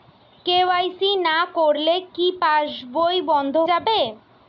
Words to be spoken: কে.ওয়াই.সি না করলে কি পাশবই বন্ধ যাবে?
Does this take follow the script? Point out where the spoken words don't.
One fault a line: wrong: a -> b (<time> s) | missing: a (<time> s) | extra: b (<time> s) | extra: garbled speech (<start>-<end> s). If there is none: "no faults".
no faults